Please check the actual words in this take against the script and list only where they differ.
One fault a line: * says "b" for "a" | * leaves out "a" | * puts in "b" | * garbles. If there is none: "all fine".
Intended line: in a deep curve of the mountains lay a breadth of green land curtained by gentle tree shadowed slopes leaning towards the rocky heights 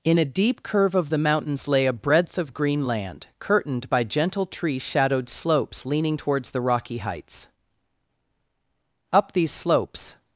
* puts in "up these slopes"